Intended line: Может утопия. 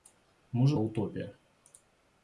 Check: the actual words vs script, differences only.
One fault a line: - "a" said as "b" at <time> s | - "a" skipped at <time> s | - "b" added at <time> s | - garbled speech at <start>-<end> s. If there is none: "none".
none